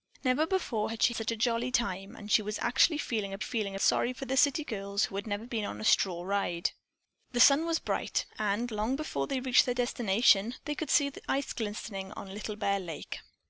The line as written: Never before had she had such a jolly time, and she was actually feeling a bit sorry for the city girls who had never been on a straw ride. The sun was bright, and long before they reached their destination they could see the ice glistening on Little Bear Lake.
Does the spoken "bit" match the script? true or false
false